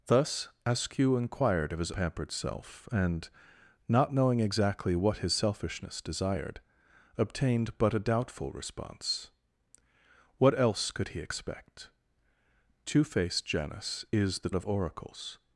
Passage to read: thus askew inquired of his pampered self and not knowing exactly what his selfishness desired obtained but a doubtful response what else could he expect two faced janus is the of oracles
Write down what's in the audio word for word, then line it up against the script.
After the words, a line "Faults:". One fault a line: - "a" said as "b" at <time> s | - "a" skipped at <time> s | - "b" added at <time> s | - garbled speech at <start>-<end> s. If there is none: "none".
thus askew inquired of his pampered self and not knowing exactly what his selfishness desired obtained but a doubtful response what else could he expect two faced janus is the of oracles
Faults:
none